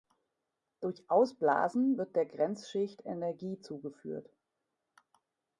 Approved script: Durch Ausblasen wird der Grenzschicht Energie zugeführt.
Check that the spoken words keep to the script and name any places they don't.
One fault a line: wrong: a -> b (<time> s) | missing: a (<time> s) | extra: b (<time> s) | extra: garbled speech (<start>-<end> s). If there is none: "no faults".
no faults